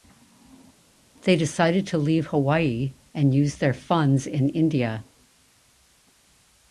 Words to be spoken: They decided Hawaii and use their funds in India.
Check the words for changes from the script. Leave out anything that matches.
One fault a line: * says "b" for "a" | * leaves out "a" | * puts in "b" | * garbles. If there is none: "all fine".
* puts in "to leave"